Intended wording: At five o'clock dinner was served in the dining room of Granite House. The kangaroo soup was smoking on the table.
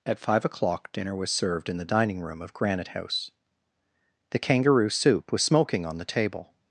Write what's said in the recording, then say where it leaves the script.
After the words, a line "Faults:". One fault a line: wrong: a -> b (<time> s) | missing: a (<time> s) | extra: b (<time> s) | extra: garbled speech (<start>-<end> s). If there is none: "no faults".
At five o'clock dinner was served in the dining room of Granite House. The kangaroo soup was smoking on the table.
Faults:
no faults